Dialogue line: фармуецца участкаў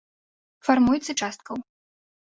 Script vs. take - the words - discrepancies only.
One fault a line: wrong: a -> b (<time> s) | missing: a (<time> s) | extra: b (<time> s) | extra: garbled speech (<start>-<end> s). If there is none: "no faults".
no faults